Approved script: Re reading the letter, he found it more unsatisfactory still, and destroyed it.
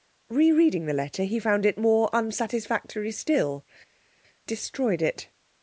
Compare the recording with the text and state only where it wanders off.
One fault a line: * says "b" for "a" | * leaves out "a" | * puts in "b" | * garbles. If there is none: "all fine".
* leaves out "and"